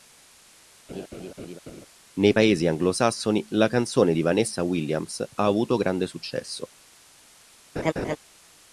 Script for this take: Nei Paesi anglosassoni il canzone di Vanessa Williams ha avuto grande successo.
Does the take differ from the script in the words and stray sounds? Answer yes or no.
yes